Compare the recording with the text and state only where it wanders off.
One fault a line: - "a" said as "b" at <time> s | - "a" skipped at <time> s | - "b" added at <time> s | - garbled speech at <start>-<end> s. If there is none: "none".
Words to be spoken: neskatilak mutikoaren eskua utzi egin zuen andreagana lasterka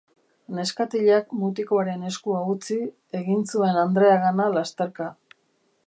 none